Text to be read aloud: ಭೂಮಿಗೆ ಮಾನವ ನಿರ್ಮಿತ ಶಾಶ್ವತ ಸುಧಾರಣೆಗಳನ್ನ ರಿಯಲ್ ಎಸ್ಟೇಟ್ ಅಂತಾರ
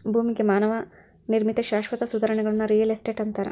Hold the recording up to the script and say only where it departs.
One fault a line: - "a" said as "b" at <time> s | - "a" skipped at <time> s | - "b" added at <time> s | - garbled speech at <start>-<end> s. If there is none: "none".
none